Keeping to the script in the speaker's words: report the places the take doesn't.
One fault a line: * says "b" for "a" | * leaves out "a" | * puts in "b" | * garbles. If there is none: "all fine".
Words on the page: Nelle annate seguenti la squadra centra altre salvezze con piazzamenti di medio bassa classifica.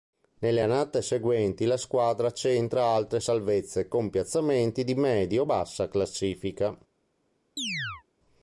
all fine